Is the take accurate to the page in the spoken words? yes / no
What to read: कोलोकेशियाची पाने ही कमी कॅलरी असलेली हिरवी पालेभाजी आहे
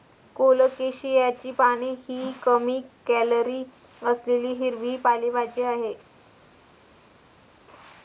yes